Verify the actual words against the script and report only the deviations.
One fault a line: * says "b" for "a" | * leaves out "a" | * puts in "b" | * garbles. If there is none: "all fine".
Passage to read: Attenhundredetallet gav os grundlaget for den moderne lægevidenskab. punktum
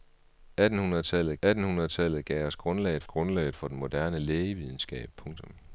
* puts in "attenhundredetallet"
* puts in "grundlaget"